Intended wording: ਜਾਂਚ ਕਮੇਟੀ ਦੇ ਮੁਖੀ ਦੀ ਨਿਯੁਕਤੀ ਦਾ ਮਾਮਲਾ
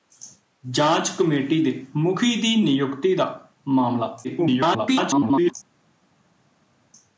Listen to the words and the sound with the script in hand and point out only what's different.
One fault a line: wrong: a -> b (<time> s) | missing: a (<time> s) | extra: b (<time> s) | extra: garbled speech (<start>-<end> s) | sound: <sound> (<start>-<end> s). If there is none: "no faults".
extra: garbled speech (4.2-5.5 s)